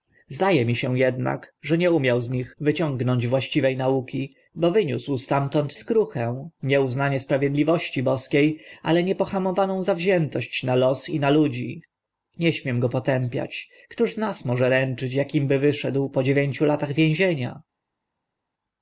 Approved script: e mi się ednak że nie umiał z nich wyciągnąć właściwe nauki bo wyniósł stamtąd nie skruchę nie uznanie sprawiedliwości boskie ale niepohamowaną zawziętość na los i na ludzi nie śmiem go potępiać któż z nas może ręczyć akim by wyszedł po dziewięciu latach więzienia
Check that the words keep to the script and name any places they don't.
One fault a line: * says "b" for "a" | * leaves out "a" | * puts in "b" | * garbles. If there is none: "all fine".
* leaves out "nie"